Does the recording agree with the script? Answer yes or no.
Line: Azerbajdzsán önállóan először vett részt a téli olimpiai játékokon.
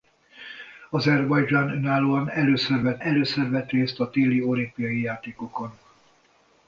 no